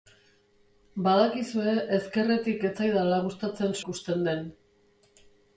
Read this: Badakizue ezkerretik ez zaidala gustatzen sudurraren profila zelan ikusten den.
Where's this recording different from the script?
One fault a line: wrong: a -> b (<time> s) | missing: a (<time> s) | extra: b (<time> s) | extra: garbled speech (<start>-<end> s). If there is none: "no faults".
missing: sudurraren profila zelan (3.8 s)